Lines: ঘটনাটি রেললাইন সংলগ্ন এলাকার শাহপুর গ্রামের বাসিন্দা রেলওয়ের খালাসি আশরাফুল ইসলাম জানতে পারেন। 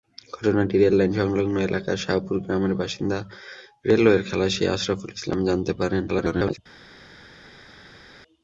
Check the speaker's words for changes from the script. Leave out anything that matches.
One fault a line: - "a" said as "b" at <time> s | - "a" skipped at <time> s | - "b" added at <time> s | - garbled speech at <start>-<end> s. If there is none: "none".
- garbled speech at 6.1-6.6 s